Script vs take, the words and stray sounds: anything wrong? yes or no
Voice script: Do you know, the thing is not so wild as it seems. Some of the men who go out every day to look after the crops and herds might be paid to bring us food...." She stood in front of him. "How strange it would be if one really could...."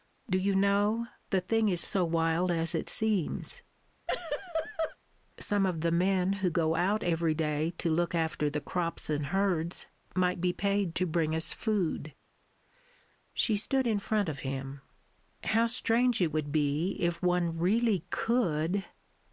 yes